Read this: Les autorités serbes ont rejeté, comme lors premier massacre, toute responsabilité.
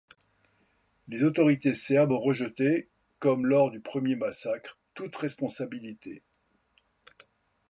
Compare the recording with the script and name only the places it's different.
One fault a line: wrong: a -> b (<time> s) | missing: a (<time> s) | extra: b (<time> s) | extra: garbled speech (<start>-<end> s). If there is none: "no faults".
extra: du (3.7 s)